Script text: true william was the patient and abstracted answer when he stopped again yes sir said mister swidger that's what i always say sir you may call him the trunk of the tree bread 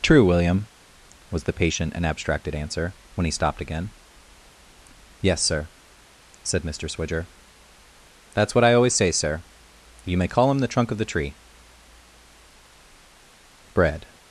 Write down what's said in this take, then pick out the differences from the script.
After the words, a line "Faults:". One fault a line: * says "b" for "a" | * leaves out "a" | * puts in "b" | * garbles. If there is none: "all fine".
true william was the patient and abstracted answer when he stopped again yes sir said mister swidger that's what i always say sir you may call him the trunk of the tree bread
Faults:
all fine